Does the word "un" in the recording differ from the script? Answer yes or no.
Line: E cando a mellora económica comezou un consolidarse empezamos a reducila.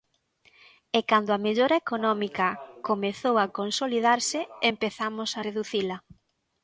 yes